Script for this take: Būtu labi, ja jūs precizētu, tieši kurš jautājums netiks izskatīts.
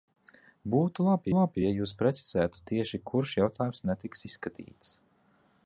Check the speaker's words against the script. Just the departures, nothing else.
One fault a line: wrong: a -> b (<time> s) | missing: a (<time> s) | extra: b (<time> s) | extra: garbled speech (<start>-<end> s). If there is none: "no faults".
extra: labi (1.4 s)